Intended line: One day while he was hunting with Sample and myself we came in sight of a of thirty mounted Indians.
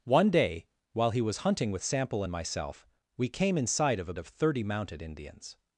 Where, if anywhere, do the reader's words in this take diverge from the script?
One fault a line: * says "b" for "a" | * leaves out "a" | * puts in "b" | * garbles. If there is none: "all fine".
all fine